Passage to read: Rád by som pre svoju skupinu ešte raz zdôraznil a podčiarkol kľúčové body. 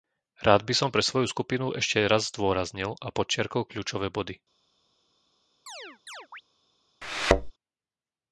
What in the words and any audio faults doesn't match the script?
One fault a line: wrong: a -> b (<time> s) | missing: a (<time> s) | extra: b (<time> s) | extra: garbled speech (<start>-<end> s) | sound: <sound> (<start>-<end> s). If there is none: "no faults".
sound: chirp (5.7-6.4 s)
sound: thud (7.0-7.5 s)